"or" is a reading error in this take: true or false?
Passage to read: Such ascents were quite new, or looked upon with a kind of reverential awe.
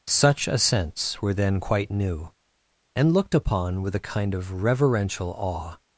true